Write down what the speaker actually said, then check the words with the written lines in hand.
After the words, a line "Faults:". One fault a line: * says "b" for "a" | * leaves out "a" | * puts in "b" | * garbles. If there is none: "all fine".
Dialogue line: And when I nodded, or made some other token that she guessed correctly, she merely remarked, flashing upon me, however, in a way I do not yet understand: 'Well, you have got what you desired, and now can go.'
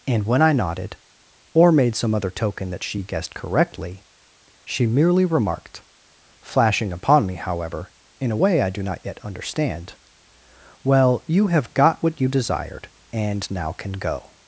And when I nodded, or made some other token that she guessed correctly, she merely remarked, flashing upon me, however, in a way I do not yet understand: 'Well, you have got what you desired, and now can go.'
Faults:
all fine